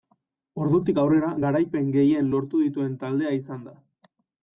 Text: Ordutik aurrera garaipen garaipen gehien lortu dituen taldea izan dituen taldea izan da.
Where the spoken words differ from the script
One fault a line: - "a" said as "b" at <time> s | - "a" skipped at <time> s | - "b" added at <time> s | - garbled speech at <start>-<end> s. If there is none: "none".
- "garaipen" skipped at 1.9 s
- "dituen taldea izan" skipped at 3.6 s